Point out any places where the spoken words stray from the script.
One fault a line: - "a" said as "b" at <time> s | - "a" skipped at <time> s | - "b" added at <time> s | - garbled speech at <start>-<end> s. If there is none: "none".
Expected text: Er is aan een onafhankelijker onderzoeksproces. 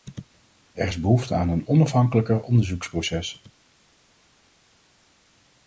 - "behoefte" added at 1.0 s